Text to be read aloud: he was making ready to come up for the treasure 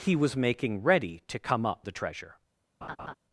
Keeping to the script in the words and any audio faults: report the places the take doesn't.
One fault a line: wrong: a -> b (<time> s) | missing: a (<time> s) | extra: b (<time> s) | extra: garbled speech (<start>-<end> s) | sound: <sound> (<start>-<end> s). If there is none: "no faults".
missing: for (1.9 s)
sound: laugh (2.8-3.1 s)